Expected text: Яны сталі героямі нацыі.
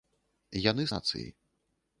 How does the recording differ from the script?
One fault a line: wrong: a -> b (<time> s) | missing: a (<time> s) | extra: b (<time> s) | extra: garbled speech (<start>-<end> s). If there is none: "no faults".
missing: сталі героямі (0.9 s)